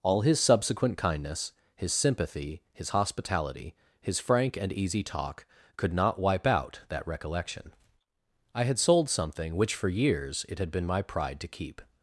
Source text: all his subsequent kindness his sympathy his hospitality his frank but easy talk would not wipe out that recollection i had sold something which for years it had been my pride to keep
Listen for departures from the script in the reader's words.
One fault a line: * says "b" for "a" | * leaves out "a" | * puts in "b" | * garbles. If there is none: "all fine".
* says "and" for "but"
* says "could" for "would"